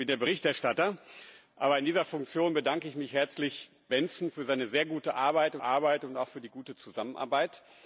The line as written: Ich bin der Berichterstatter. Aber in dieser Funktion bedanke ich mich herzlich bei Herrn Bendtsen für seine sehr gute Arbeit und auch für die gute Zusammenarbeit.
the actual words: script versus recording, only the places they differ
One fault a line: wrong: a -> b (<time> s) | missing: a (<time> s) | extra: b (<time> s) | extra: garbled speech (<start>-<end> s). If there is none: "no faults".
missing: bei Herrn (3.7 s)
extra: Arbeit (5.6 s)